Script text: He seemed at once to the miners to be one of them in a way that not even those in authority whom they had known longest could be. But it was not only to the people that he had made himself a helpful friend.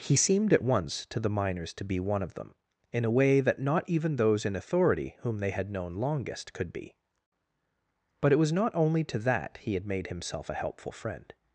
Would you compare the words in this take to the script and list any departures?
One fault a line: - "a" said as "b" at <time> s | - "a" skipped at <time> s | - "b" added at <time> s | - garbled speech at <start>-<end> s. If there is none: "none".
- "the people" skipped at 9.2 s